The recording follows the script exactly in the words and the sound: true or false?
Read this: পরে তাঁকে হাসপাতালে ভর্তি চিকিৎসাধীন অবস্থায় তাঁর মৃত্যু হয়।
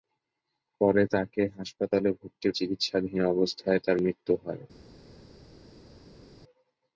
true